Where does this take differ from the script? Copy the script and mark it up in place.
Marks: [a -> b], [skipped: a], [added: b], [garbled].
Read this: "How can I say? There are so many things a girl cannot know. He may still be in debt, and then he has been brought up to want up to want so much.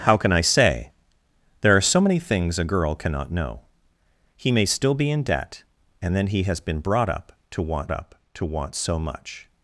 "How can I say? There are so many things a girl cannot know. He may still be in debt, and then he has been brought up to want up to want so much.